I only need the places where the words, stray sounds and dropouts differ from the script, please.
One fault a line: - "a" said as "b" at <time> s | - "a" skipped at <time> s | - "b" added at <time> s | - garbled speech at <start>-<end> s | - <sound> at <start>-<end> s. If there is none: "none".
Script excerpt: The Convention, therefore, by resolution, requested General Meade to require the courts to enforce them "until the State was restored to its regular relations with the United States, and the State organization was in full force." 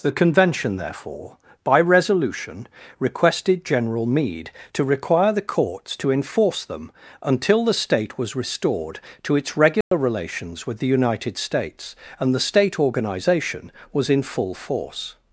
- dropout at 9.8-9.9 s